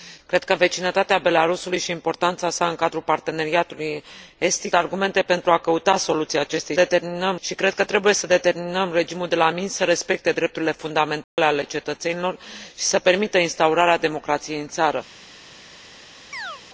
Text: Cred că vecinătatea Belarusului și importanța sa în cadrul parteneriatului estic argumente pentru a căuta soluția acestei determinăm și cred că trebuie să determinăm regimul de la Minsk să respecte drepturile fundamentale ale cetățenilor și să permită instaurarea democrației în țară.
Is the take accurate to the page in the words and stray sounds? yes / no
no